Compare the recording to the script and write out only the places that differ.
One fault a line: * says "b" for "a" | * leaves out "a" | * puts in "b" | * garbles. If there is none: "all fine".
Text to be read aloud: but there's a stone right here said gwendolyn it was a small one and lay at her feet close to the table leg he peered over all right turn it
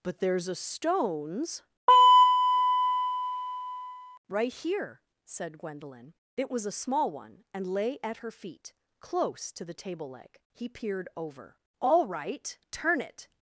* says "stones" for "stone"